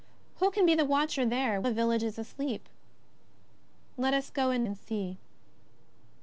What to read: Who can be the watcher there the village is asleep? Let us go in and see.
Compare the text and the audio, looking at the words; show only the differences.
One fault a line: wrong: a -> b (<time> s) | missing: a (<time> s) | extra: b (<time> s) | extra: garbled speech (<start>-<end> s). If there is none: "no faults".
no faults